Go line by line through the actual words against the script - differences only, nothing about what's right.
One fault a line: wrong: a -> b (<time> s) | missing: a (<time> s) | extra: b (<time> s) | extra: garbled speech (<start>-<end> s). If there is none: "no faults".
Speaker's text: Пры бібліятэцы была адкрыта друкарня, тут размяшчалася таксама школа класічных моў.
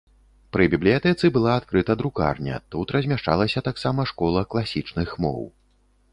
no faults